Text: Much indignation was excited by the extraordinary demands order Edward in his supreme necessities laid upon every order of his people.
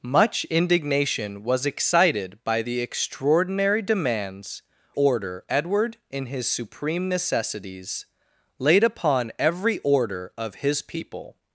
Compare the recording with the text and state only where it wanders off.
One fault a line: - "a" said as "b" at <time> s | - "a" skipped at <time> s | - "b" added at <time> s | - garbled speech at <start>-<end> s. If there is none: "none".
none